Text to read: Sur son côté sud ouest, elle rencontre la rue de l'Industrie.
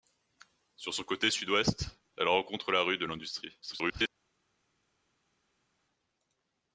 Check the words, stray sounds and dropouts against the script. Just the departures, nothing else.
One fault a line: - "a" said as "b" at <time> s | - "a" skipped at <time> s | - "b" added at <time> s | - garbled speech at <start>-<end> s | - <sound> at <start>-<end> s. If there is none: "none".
- garbled speech at 3.6-4.1 s